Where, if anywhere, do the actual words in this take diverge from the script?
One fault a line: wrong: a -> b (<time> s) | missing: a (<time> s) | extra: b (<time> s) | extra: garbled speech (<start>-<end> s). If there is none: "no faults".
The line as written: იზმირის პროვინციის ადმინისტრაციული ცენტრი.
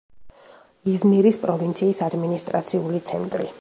no faults